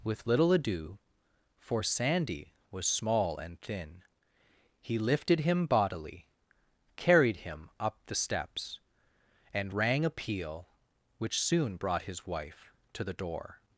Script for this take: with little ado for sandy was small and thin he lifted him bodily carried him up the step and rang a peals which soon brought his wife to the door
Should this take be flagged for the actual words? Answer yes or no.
yes